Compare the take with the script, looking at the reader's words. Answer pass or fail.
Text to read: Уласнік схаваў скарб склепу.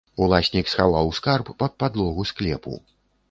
fail